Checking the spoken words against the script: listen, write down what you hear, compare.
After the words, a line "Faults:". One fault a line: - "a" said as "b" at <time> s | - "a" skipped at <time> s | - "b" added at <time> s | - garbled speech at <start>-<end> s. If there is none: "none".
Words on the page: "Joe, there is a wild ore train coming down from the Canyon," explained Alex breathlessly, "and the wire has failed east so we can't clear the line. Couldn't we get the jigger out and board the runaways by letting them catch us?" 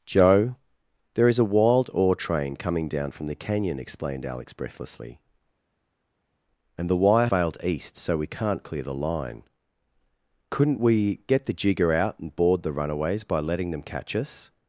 "Joe, there is a wild ore train coming down from the Canyon," explained Alex breathlessly, "and the wire failed east so we can't clear the line. Couldn't we get the jigger out and board the runaways by letting them catch us?"
Faults:
- "has" skipped at 7.3 s